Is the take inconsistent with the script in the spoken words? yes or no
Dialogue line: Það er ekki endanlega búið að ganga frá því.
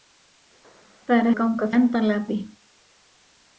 yes